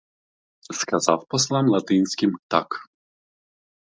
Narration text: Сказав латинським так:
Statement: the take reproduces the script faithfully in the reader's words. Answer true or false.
false